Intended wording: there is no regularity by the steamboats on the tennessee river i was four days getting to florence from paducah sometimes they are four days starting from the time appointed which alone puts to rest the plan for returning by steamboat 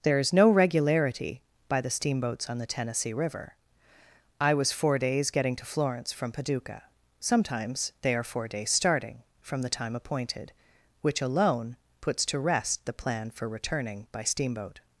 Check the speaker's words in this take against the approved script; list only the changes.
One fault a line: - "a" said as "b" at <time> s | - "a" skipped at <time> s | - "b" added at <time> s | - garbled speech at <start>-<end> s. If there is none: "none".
none